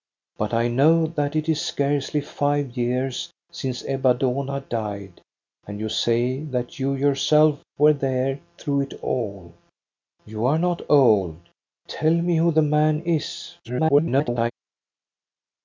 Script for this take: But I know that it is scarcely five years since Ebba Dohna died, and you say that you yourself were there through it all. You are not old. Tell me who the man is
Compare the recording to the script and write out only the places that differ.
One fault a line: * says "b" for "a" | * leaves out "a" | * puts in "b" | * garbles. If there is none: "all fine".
* garbles